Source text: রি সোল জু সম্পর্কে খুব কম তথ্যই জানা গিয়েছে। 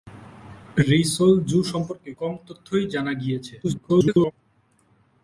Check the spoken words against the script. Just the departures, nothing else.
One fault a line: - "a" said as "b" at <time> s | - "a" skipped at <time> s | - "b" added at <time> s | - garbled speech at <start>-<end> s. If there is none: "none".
- "খুব" skipped at 2.1 s
- garbled speech at 3.6-4.3 s